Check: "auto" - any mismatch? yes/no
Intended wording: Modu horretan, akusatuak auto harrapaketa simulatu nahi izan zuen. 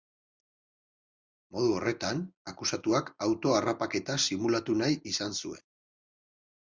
no